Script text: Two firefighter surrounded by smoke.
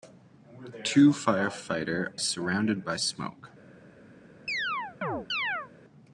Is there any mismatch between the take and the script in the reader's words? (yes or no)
no